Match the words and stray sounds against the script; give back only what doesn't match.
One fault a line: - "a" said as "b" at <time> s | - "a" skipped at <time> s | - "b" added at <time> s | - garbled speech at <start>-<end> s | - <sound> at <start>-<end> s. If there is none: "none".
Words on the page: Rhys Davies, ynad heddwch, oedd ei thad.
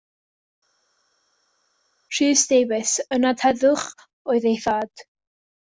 none